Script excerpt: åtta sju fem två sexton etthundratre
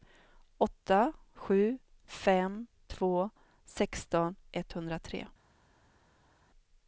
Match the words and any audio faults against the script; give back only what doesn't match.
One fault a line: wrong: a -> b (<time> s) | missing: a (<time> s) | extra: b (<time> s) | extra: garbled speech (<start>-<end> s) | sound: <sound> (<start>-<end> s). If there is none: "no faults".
no faults